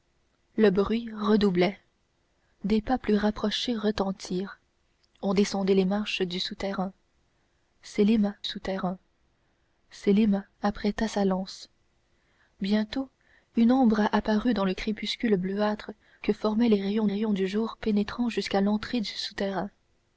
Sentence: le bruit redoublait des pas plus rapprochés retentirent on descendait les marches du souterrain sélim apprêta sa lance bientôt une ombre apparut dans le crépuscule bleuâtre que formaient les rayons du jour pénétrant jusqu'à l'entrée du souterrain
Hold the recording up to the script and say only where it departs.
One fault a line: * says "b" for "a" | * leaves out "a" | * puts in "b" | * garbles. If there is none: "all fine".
* puts in "souterrain sélim"
* puts in "rayons"